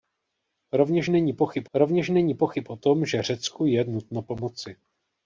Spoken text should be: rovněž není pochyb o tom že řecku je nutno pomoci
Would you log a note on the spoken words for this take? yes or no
yes